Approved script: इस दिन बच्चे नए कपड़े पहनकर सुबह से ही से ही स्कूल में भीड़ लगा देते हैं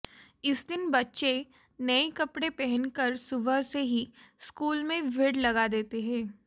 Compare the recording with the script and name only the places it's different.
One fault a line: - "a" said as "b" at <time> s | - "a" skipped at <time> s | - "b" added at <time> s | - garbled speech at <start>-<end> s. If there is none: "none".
- "से ही" skipped at 4.1 s